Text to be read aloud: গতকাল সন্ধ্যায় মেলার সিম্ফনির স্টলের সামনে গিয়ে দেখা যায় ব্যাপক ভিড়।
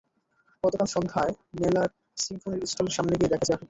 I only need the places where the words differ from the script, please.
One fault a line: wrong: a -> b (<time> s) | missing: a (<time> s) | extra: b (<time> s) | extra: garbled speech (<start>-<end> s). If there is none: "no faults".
missing: যায় (3.5 s)